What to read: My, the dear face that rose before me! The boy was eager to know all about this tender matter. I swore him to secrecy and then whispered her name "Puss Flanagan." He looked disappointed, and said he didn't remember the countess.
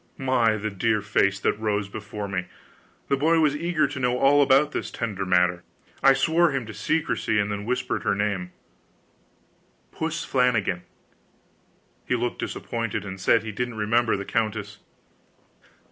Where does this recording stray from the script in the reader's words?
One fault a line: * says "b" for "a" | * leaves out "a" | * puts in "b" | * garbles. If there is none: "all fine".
all fine